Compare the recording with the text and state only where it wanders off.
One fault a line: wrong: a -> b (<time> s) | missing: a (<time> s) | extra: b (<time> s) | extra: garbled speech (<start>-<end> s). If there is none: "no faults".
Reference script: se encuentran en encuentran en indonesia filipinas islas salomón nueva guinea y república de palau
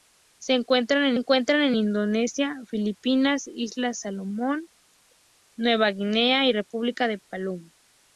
no faults